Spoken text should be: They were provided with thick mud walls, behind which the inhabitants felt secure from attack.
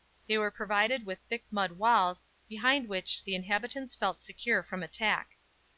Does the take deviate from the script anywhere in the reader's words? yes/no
no